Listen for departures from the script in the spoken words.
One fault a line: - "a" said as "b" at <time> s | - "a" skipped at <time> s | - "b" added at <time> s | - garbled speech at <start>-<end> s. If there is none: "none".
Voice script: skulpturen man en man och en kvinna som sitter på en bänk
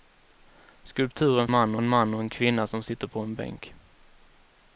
none